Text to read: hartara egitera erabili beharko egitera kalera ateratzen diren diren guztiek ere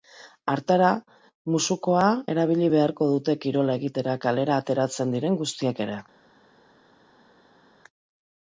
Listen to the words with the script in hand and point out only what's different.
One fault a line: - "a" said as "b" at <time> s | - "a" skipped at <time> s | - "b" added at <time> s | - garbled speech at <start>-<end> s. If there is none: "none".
- "egitera" said as "musukoa" at 1.6 s
- "dute kirola" added at 3.1 s
- "diren" skipped at 5.4 s